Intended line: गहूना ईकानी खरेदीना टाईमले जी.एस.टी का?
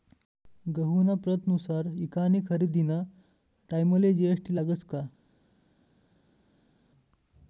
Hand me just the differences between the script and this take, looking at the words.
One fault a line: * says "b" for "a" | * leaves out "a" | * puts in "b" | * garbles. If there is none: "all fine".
* puts in "प्रतनुसार"
* puts in "लागस"